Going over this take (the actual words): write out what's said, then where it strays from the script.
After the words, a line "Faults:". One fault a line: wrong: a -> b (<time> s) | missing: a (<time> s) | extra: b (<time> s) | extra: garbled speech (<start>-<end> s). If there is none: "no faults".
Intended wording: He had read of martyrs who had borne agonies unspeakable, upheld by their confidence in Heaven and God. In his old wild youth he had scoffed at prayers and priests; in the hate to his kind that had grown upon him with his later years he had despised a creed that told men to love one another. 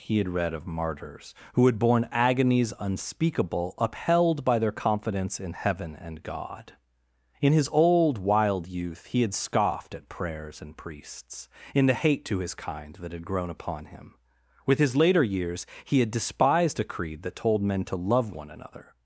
He had read of martyrs who had borne agonies unspeakable, upheld by their confidence in Heaven and God. In his old wild youth he had scoffed at prayers and priests; in the hate to his kind that had grown upon him with his later years he had despised a creed that told men to love one another.
Faults:
no faults